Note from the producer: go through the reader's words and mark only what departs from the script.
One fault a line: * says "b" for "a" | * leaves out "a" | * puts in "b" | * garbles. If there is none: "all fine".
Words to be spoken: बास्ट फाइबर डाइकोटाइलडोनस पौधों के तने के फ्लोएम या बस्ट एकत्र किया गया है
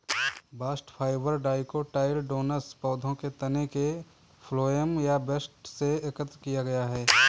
* puts in "से"